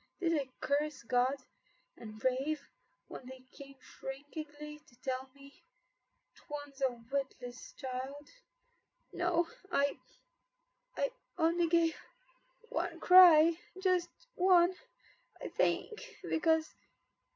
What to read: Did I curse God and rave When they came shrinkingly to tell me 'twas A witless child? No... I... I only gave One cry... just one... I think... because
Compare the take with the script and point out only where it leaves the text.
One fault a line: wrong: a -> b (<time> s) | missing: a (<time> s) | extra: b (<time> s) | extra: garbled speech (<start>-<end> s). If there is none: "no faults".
no faults